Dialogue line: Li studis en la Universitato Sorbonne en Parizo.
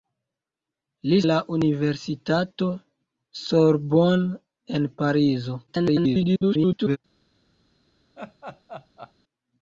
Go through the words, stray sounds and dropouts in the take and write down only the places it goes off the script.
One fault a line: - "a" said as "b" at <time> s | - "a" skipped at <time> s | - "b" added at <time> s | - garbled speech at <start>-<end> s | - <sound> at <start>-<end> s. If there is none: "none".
- "studis en" skipped at 1.2 s
- garbled speech at 5.7-7.0 s
- laugh at 8.2-9.1 s